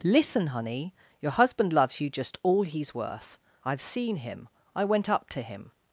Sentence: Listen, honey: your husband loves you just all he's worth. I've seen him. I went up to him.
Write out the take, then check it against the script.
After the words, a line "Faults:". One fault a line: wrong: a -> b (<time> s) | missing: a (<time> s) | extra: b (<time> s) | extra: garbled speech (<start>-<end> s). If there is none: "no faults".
Listen, honey: your husband loves you just all he's worth. I've seen him. I went up to him.
Faults:
no faults